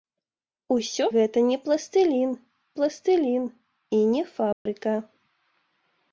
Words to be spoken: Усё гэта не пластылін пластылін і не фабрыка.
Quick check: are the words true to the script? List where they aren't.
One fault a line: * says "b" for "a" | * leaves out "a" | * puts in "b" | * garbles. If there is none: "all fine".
all fine